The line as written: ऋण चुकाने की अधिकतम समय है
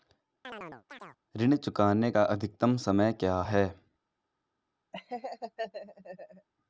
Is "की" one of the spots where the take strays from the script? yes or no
yes